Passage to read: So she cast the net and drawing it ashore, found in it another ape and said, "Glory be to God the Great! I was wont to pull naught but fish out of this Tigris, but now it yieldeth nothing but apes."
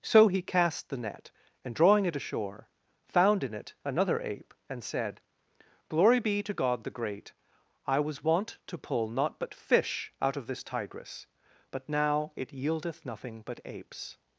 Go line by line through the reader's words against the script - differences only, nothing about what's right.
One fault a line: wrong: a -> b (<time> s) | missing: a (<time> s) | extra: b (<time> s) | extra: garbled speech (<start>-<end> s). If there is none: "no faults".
wrong: she -> he (0.3 s)